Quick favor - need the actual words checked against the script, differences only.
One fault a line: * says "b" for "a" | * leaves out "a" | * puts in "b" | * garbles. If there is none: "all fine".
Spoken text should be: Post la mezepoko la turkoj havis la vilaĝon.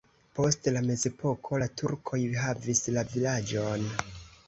all fine